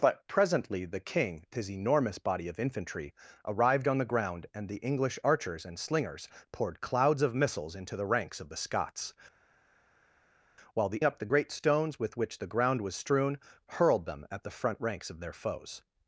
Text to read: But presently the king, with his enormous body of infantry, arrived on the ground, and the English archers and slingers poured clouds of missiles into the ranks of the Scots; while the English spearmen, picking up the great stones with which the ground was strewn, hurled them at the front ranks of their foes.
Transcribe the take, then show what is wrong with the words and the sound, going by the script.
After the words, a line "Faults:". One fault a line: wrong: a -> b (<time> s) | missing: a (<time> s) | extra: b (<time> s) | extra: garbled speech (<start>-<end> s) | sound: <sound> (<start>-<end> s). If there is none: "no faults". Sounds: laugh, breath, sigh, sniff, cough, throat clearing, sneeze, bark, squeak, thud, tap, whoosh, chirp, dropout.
But presently the king, his enormous body of infantry, arrived on the ground, and the English archers and slingers poured clouds of missiles into the ranks of the Scots; while the Up the great stones with which the ground was strewn, hurled them at the front ranks of their foes.
Faults:
missing: with (1.4 s)
missing: English spearmen picking (11.0 s)